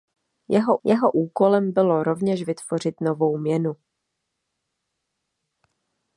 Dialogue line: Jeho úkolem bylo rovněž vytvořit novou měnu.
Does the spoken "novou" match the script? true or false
true